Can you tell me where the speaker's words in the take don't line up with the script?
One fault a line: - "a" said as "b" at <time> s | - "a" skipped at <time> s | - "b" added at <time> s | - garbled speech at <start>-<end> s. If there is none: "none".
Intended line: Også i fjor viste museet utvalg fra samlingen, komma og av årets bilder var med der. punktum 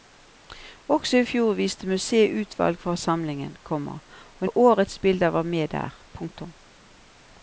none